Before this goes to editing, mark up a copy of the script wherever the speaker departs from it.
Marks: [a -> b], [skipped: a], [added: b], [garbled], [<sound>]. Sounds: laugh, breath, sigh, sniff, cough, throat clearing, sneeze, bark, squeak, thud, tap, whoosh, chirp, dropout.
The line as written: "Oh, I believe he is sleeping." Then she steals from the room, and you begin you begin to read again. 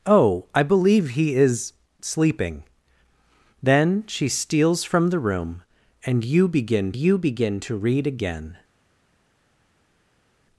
"Oh, I believe he is sleeping." Then she steals from the room, and you begin you begin to read again.